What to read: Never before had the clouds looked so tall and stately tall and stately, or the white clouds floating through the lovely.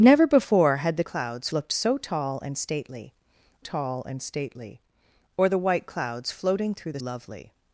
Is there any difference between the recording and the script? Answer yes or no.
no